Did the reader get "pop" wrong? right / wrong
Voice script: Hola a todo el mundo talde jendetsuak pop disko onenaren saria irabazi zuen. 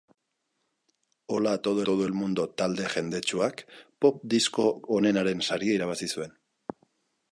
right